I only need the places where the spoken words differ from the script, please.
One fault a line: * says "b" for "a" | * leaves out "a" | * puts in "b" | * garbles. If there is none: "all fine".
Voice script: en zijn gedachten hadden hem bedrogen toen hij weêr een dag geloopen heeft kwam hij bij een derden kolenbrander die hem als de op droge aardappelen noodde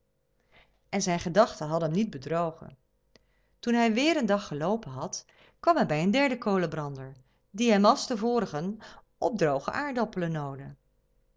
* puts in "niet"
* says "had" for "heeft"
* puts in "vorigen"